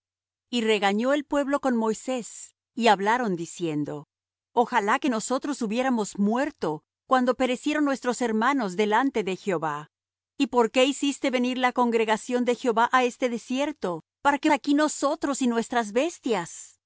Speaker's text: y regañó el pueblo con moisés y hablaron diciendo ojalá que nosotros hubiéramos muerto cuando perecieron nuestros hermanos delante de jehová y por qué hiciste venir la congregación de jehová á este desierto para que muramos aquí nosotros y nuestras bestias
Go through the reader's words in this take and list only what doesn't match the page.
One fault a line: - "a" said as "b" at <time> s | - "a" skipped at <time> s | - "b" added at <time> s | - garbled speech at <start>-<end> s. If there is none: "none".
- "muramos" skipped at 14.5 s